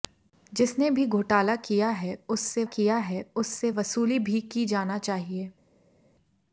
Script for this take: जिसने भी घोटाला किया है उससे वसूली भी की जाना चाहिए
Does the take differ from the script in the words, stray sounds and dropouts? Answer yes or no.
yes